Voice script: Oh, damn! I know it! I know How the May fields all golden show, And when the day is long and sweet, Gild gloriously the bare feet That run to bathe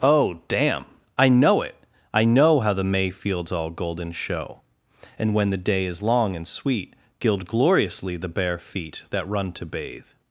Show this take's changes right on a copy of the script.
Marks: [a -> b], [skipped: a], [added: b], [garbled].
Oh, damn! I know it! I know How the May fields all golden show, And when the day is long and sweet, Gild gloriously the bare feet That run to bathe